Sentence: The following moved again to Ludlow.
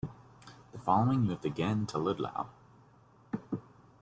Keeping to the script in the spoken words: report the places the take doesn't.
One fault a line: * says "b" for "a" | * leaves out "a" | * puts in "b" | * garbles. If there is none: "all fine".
all fine